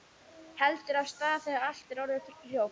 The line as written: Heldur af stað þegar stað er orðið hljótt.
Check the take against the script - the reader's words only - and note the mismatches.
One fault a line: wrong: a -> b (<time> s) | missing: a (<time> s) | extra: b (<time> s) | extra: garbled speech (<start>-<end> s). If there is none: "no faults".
wrong: stað -> allt (1.7 s)